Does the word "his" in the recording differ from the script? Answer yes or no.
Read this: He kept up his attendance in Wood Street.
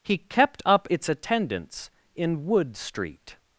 yes